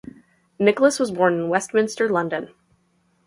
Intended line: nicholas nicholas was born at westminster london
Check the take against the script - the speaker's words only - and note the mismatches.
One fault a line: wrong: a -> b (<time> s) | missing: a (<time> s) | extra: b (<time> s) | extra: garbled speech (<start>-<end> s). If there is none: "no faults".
missing: nicholas (1.0 s)
wrong: at -> in (1.4 s)